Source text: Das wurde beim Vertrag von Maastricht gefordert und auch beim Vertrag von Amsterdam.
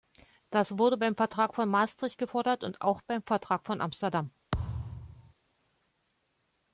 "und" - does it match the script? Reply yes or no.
yes